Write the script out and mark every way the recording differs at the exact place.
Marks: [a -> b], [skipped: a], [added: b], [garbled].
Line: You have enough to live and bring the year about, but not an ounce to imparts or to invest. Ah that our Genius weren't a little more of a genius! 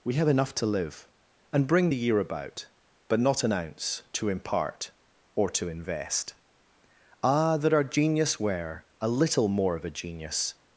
[You -> We] have enough to live and bring the year about, but not an ounce to [imparts -> impart] or to invest. Ah that our Genius [weren't -> were] a little more of a genius!